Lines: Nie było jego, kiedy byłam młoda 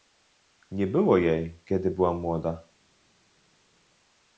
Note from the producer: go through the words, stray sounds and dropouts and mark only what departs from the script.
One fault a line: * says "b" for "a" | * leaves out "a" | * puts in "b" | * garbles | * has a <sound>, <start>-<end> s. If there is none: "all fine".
* says "jej" for "jego"